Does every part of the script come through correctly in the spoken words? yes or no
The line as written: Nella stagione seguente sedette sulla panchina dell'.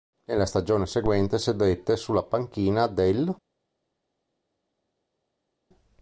yes